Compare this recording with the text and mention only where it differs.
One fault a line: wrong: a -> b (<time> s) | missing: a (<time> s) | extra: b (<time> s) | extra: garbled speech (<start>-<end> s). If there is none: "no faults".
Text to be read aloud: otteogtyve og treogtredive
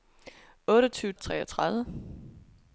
no faults